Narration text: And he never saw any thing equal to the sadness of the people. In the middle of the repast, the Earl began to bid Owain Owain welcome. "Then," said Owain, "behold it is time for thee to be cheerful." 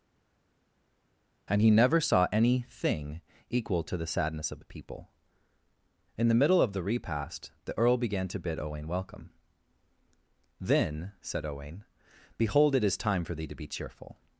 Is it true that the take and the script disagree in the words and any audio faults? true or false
true